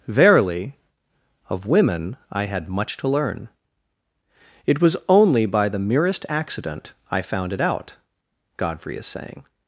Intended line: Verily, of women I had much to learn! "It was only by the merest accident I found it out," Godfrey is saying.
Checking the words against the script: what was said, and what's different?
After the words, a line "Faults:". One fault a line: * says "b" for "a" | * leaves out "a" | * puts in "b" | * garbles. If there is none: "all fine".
Verily, of women I had much to learn! "It was only by the merest accident I found it out," Godfrey is saying.
Faults:
all fine